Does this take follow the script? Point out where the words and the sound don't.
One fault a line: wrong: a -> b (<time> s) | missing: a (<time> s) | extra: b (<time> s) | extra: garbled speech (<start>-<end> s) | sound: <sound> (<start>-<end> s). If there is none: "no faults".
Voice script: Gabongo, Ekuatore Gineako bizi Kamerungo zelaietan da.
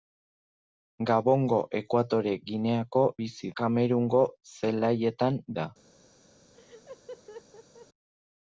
sound: laugh (6.5-7.9 s)